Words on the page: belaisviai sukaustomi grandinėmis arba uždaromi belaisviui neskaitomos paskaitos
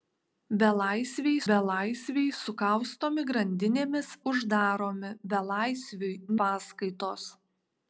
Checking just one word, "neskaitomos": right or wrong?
wrong